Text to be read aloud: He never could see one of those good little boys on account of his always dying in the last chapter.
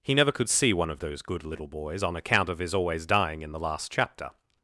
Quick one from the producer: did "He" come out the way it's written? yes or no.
yes